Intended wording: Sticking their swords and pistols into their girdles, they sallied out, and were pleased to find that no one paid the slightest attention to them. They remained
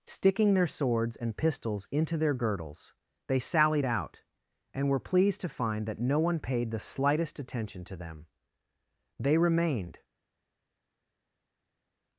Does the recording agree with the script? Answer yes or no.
yes